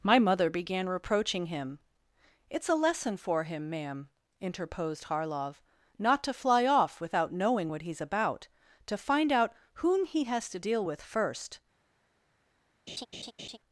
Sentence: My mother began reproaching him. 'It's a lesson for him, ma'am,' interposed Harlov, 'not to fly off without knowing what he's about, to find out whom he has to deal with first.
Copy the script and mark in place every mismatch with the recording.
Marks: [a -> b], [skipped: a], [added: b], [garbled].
My mother began reproaching him. 'It's a lesson for him, ma'am,' interposed Harlov, 'not to fly off without knowing what he's about, to find out whom he has to deal with first.